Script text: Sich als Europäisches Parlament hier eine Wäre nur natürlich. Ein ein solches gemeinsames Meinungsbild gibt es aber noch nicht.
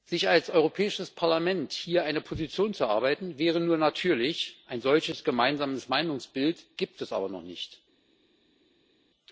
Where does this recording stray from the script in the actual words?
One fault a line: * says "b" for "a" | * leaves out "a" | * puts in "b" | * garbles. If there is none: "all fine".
* puts in "Position zu erarbeiten"
* leaves out "ein"